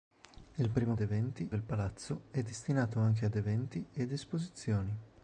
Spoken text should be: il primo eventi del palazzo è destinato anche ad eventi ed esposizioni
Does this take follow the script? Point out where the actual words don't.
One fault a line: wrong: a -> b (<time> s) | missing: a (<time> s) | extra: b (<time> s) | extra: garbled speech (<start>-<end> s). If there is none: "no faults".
no faults